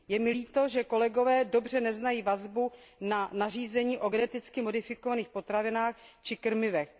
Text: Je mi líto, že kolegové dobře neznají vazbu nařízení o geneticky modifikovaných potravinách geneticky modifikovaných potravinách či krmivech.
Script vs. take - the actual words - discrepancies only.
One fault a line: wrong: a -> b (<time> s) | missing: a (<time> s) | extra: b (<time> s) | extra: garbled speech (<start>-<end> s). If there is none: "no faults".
extra: na (3.0 s)
missing: geneticky modifikovaných potravinách (5.9 s)